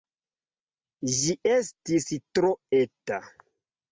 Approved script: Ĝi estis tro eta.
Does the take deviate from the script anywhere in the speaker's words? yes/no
no